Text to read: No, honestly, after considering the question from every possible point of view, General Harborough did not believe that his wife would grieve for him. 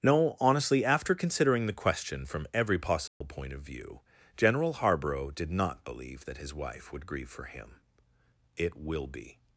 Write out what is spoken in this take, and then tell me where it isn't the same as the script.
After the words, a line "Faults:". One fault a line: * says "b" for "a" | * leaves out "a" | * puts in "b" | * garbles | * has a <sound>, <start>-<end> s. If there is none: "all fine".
No, honestly, after considering the question from every possible point of view, General Harborough did not believe that his wife would grieve for him. "It will be
Faults:
* has a dropout, 3.1-3.2 s
* puts in "It will be"